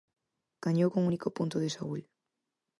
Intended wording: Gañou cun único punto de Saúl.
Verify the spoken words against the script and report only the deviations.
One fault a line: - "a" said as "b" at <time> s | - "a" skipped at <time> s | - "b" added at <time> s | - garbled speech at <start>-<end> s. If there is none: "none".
none